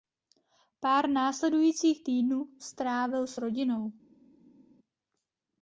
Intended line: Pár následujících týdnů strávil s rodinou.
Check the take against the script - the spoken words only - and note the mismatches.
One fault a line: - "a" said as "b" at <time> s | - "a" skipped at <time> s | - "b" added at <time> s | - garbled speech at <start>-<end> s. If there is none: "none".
none